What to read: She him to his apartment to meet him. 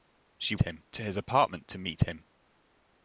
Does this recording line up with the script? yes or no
yes